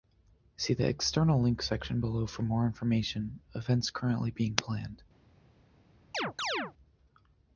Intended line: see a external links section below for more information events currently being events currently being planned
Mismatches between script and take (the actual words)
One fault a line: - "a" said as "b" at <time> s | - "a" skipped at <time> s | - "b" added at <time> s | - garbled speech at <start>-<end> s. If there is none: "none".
- "a" said as "the" at 0.7 s
- "events currently being" skipped at 4.5 s